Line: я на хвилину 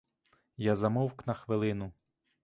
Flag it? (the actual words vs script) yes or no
yes